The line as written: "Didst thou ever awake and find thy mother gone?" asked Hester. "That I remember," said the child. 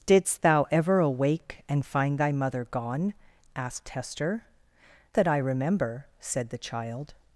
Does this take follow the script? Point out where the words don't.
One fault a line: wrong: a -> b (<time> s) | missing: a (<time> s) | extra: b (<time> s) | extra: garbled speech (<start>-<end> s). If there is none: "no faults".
no faults